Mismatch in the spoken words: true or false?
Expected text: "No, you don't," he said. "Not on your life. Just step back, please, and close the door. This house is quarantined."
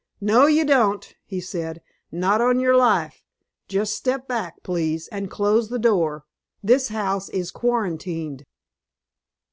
false